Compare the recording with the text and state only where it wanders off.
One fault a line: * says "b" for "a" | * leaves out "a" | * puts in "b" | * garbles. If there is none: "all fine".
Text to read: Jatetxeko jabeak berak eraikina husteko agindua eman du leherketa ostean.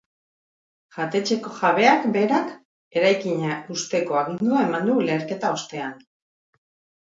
all fine